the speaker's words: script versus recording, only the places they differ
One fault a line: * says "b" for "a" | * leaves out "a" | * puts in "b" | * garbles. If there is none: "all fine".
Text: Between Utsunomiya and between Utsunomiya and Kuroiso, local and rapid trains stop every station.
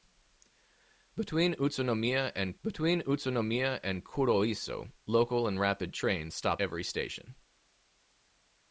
all fine